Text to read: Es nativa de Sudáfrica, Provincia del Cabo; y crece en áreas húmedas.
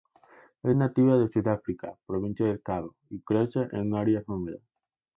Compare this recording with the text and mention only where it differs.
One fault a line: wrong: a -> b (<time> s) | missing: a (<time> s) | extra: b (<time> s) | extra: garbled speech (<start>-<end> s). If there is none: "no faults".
no faults